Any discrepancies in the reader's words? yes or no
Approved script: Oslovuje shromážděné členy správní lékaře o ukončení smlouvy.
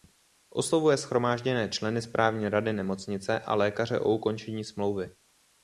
yes